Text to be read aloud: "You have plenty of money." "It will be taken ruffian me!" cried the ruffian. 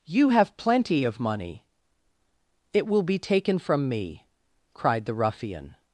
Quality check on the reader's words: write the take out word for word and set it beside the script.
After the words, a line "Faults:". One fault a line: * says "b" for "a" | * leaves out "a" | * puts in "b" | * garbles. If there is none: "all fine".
"You have plenty of money." "It will be taken from me!" cried the ruffian.
Faults:
* says "from" for "ruffian"